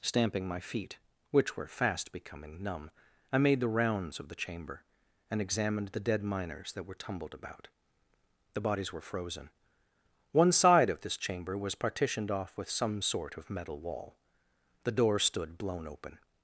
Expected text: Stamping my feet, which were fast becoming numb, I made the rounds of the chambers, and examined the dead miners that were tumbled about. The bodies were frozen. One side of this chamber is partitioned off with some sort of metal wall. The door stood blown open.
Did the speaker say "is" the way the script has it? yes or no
no